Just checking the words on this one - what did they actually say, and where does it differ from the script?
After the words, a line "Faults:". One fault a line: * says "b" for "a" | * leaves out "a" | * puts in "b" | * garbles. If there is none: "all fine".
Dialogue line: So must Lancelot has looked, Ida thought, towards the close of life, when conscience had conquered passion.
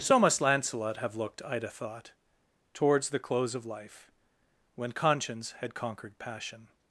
So must Lancelot have looked, Ida thought, towards the close of life, when conscience had conquered passion.
Faults:
* says "have" for "has"